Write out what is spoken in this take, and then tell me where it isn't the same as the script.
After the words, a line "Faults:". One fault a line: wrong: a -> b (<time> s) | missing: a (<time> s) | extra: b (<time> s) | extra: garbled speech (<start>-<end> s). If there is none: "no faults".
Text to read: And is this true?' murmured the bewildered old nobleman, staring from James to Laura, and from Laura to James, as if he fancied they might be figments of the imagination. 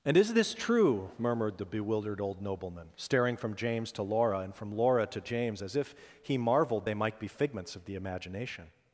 And is this true?' murmured the bewildered old nobleman, staring from James to Laura, and from Laura to James, as if he marveled they might be figments of the imagination.
Faults:
wrong: fancied -> marveled (6.4 s)